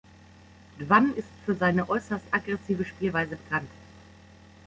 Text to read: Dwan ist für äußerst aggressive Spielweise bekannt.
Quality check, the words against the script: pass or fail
fail